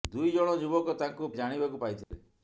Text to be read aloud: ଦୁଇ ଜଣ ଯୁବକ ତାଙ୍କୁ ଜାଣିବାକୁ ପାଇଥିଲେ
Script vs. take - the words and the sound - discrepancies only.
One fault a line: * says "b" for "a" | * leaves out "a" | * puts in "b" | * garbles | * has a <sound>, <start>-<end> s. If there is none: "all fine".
* has a dropout, 2.0-2.1 s